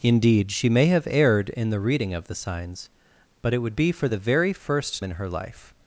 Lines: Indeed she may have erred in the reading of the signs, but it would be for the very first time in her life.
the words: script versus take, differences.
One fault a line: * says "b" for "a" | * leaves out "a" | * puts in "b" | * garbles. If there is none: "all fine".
* leaves out "time"